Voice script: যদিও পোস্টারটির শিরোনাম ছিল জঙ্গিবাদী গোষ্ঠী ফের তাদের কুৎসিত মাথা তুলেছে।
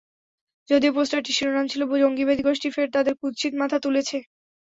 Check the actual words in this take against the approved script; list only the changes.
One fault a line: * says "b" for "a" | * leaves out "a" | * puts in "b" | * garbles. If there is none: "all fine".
all fine